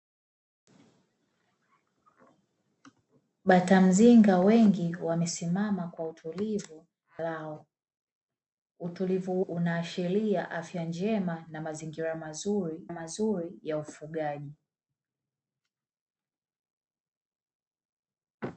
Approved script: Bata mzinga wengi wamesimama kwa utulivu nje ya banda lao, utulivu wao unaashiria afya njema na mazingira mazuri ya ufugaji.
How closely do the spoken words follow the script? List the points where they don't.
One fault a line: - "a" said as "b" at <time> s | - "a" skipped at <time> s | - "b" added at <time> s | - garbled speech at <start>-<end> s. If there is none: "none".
- "nje ya banda" skipped at 6.9 s
- "wao" skipped at 9.4 s
- "mazuri" added at 12.9 s